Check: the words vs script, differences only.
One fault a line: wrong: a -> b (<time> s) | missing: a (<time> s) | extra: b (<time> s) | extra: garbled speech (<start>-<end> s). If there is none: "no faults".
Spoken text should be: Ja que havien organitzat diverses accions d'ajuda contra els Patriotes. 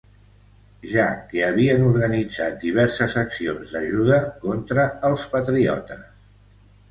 no faults